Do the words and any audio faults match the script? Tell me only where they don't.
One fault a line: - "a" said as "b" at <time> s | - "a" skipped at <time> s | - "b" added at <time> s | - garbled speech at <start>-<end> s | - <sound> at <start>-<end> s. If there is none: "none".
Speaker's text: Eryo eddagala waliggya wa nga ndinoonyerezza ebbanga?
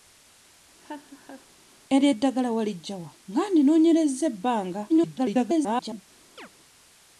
- laugh at 0.8-1.5 s
- garbled speech at 4.9-6.0 s
- chirp at 6.4-6.5 s